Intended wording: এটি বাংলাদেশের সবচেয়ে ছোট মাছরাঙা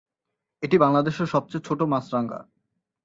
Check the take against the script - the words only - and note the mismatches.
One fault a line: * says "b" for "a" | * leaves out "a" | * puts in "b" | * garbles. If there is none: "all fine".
all fine